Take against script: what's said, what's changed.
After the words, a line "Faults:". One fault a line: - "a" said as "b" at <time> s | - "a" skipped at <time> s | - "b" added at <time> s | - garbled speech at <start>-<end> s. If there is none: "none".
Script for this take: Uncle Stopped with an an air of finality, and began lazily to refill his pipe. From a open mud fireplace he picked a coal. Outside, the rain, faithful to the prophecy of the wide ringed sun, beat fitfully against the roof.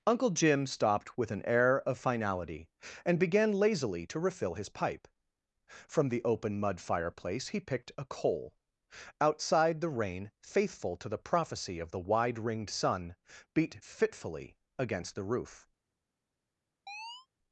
Uncle Jim stopped with an air of finality, and began lazily to refill his pipe. From the open mud fireplace he picked a coal. Outside, the rain, faithful to the prophecy of the wide ringed sun, beat fitfully against the roof.
Faults:
- "Jim" added at 0.3 s
- "an" skipped at 1.4 s
- "a" said as "the" at 6.1 s